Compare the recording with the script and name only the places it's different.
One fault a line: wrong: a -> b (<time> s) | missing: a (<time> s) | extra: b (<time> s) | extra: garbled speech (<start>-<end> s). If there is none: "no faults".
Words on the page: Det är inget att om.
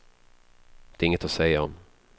extra: säga (1.3 s)